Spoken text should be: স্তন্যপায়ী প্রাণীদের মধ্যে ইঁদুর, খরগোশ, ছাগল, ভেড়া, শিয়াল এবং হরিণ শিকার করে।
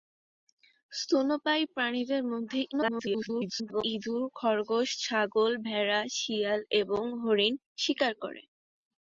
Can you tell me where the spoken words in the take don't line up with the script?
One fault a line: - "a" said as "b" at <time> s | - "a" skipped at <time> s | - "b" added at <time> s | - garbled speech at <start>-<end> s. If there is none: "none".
- garbled speech at 2.7-3.8 s